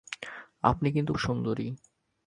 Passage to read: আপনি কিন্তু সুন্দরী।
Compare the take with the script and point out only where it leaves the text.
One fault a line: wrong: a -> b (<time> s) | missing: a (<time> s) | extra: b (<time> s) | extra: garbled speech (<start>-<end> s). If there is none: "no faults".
no faults